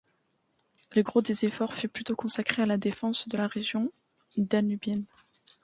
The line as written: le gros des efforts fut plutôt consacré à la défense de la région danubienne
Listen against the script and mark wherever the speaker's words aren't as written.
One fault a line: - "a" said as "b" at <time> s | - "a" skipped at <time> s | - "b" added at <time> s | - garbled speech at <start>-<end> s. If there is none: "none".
none